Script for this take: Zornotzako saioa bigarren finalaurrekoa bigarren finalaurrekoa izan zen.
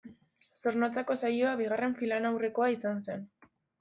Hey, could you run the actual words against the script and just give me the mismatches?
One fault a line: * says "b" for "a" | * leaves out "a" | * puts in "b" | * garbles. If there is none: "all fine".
* leaves out "bigarren finalaurrekoa"